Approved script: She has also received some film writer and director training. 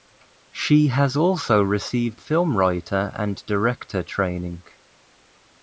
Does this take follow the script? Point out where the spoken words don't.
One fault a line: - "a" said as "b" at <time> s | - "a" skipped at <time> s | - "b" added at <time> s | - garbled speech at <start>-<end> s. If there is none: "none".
- "some" skipped at 2.2 s